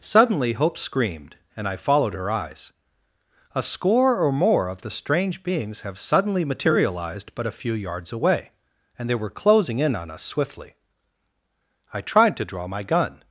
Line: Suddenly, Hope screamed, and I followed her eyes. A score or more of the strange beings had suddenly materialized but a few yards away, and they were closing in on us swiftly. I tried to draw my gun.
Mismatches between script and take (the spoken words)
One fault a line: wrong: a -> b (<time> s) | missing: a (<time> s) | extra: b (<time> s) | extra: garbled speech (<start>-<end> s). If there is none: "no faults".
wrong: had -> have (5.8 s)